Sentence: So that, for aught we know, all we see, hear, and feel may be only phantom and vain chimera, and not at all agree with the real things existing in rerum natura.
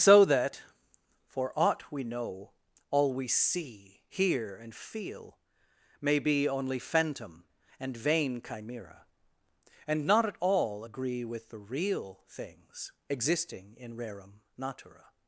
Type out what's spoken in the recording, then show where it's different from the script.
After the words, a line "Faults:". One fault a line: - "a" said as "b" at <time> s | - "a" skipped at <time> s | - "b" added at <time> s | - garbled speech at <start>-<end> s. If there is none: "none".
So that, for aught we know, all we see, hear, and feel may be only phantom and vain chimera, and not at all agree with the real things existing in rerum natura.
Faults:
none